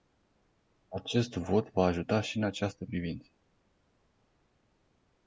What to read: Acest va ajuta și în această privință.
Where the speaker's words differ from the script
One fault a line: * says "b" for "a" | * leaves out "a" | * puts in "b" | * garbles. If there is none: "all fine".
* puts in "vot"